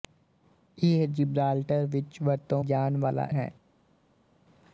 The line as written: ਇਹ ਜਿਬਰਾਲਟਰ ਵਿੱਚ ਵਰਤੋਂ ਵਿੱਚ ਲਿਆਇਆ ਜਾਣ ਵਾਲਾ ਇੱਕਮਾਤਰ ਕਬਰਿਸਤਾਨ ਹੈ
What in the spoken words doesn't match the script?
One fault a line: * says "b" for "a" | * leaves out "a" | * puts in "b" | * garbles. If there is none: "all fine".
* leaves out "ਵਿੱਚ ਲਿਆਇਆ"
* leaves out "ਇੱਕਮਾਤਰ ਕਬਰਿਸਤਾਨ"